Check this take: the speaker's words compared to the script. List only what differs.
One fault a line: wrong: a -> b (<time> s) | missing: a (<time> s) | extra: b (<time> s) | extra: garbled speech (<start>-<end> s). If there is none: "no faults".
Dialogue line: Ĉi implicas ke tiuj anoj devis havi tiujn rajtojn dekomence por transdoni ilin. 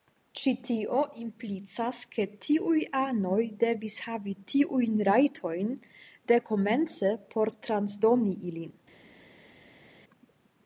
extra: tio (0.7 s)